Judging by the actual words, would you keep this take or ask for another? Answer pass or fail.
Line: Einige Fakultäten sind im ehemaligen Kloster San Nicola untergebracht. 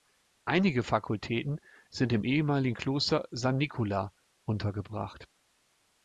pass